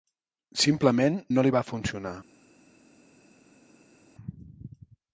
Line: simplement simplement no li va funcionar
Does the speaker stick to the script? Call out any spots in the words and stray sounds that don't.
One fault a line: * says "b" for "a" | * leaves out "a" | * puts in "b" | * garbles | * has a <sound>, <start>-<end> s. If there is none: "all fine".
* leaves out "simplement"